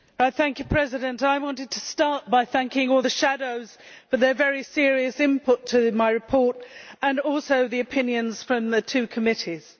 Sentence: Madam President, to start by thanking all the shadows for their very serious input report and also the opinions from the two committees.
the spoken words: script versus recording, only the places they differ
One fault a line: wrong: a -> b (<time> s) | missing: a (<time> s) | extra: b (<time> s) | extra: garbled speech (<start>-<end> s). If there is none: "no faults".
extra: I wanted (1.2 s)
extra: to my (5.7 s)